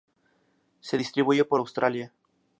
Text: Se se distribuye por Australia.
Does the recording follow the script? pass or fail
fail